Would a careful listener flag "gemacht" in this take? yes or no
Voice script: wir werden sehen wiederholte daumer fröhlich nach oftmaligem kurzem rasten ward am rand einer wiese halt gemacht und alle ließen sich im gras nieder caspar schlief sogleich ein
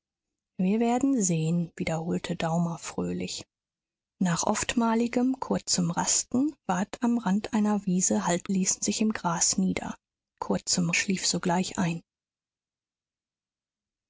yes